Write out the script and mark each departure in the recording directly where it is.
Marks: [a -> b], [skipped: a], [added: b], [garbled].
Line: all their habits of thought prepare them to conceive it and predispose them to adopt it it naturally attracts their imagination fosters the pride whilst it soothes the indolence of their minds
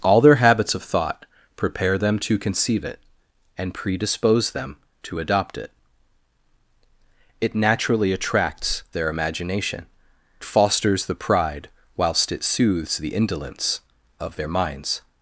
all their habits of thought prepare them to conceive it and predispose them to adopt it it naturally attracts their imagination fosters the pride whilst it soothes the indolence of their minds